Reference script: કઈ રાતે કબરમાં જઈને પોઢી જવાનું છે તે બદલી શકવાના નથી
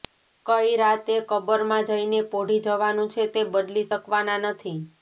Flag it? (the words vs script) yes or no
no